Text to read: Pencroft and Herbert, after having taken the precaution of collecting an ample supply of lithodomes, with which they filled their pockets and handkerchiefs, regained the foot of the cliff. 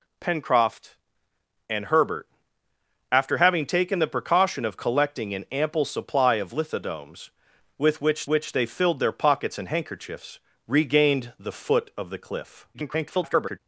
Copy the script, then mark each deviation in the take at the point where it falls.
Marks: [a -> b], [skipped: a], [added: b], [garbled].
Pencroft and Herbert, after having taken the precaution of collecting an ample supply of lithodomes, with which [added: which] they filled their pockets and handkerchiefs, regained the foot of the cliff. [garbled]